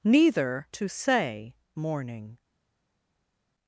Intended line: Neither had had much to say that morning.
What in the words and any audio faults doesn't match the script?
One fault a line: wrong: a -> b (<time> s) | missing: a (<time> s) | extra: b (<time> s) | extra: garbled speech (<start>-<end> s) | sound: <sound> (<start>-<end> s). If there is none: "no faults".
missing: had had much (0.7 s)
missing: that (1.6 s)